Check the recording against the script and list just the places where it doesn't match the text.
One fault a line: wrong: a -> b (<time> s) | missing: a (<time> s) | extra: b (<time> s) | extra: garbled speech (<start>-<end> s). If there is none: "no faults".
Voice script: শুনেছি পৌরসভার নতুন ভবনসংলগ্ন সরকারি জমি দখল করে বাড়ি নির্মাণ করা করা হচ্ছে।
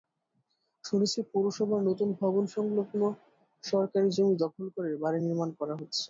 missing: করা (5.7 s)